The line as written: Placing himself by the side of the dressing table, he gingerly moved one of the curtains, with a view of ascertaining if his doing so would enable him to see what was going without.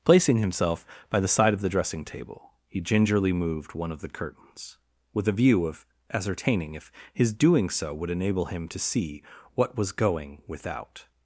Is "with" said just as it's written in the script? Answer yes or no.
yes